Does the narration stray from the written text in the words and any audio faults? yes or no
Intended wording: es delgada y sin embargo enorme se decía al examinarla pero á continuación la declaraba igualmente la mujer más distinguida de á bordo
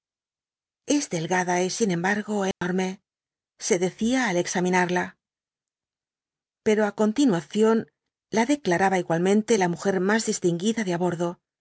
yes